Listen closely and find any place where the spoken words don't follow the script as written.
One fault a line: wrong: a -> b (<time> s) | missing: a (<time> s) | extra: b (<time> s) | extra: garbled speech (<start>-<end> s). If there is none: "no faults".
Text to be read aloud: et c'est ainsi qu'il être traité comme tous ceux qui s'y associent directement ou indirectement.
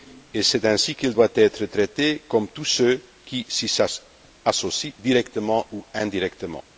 extra: doit (1.1 s)